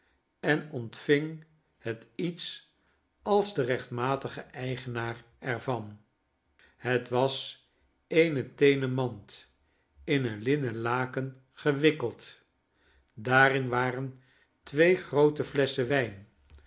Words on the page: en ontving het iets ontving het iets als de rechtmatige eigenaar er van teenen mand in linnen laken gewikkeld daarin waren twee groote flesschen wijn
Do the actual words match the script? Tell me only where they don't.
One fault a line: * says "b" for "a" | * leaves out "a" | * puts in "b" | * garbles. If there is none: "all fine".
* leaves out "ontving het iets"
* puts in "het was eene"
* puts in "een"